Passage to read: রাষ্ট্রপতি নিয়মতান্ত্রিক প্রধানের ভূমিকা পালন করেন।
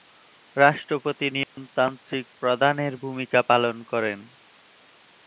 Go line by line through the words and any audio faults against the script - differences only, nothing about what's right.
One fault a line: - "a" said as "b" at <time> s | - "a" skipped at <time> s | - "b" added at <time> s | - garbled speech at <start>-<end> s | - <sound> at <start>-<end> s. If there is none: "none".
- dropout at 1.4-1.6 s